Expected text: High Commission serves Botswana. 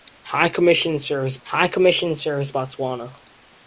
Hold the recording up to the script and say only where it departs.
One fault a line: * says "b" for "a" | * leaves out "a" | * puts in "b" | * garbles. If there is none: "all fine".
* puts in "high Commission serves"